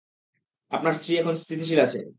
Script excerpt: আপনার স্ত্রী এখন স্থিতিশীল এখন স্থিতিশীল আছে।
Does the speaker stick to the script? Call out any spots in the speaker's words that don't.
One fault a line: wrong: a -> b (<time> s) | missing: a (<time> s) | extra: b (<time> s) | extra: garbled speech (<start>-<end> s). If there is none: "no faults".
missing: এখন স্থিতিশীল (1.8 s)